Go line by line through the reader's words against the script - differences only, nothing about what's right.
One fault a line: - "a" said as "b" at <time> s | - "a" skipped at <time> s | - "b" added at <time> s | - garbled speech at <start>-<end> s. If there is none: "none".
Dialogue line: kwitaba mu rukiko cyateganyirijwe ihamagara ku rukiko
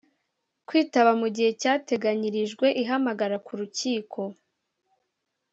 - "rukiko" said as "gihe" at 1.4 s